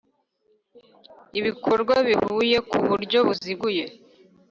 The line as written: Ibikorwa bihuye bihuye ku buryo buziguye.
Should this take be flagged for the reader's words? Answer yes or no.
yes